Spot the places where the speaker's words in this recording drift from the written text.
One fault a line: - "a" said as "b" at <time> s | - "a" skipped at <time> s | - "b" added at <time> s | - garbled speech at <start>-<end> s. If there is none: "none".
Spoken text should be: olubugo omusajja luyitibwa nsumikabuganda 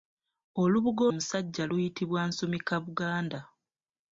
none